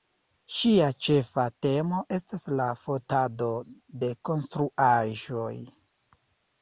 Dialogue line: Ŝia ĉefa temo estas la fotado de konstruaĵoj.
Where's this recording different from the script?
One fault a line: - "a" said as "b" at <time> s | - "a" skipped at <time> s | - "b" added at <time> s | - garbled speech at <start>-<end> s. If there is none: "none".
none